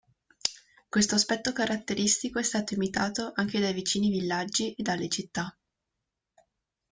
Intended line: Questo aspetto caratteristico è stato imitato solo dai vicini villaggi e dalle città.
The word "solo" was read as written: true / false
false